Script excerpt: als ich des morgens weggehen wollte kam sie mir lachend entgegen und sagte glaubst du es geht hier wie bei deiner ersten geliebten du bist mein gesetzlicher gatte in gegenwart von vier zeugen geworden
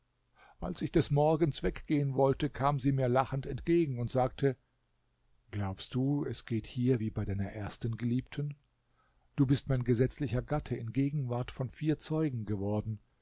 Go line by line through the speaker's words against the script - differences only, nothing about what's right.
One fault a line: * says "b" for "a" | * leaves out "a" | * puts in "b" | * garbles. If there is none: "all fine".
all fine